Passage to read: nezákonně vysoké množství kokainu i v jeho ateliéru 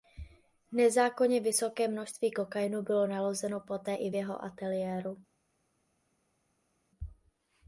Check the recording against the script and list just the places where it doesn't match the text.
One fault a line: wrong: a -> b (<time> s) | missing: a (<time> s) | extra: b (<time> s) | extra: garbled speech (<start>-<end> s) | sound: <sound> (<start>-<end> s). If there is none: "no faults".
extra: bylo nalezeno poté (2.8 s)